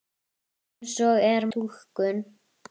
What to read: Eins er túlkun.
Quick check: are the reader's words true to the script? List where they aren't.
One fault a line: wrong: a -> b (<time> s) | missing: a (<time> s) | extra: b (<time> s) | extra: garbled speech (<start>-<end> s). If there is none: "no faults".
no faults